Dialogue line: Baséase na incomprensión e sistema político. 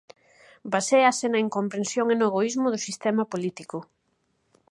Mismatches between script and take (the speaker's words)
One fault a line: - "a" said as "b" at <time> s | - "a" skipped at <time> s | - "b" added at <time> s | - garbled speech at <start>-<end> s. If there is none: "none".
- "no egoísmo do" added at 2.2 s